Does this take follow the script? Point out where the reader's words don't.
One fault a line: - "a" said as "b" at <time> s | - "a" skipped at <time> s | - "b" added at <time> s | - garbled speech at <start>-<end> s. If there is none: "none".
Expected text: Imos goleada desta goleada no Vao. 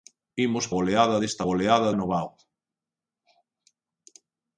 none